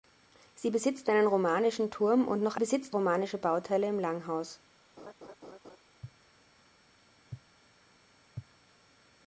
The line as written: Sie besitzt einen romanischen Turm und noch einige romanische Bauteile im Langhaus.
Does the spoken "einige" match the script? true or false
false